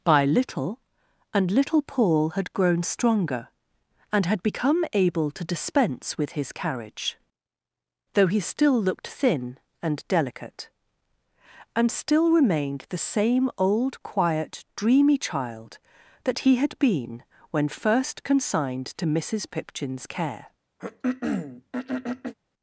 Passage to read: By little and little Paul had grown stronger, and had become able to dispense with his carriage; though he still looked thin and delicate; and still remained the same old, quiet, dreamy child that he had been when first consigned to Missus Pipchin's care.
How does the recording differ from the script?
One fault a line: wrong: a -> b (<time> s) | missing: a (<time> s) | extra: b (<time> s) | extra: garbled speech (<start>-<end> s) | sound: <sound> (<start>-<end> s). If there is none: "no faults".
sound: throat clearing (20.8-22.3 s)